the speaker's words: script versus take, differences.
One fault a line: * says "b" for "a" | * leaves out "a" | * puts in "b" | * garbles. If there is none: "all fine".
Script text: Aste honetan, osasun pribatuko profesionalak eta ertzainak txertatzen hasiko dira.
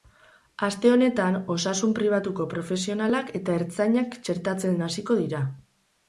all fine